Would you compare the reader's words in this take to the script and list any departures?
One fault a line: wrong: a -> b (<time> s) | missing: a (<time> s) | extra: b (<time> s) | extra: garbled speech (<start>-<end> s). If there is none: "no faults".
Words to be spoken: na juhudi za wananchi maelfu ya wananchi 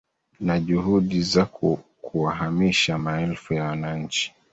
wrong: wananchi -> kuwahamisha (2.0 s)